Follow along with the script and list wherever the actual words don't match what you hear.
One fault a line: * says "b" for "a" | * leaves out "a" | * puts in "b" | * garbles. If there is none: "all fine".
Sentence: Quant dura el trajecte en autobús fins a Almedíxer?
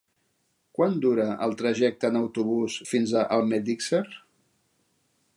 all fine